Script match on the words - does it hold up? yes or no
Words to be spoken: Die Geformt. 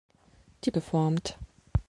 yes